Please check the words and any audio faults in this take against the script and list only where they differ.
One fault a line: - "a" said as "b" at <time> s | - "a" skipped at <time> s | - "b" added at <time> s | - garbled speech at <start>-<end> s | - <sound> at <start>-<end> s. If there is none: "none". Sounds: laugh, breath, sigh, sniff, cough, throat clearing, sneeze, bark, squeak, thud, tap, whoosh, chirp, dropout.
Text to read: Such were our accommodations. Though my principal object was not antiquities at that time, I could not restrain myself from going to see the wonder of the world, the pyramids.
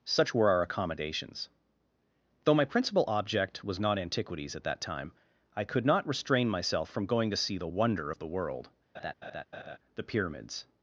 - laugh at 8.9-9.8 s